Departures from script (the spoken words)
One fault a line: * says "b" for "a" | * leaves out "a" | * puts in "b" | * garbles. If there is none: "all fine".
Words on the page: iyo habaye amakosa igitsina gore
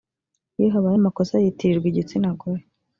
* puts in "yitirirwa"